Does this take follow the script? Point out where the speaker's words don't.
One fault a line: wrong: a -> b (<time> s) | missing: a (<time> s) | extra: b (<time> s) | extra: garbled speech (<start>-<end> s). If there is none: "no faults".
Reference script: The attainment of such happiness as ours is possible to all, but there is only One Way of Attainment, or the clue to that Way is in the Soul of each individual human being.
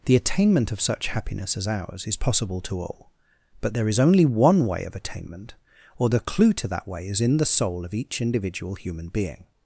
no faults